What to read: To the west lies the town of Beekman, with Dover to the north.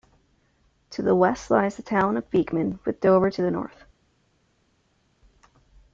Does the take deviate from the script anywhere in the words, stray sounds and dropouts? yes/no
no